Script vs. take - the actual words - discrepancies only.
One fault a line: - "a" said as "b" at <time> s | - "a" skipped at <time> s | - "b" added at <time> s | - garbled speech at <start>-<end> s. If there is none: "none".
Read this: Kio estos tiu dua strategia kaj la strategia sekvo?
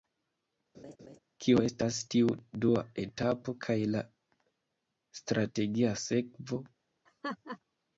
- "estos" said as "estas" at 1.7 s
- "strategia" said as "etapo" at 3.0 s